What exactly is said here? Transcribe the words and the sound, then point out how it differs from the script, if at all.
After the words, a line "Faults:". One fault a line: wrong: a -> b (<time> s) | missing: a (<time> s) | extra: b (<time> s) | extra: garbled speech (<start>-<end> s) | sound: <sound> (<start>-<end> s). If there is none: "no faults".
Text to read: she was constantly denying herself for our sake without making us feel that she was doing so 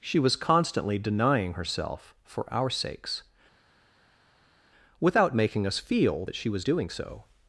she was constantly denying herself for our sakes without making us feel that she was doing so
Faults:
wrong: sake -> sakes (2.7 s)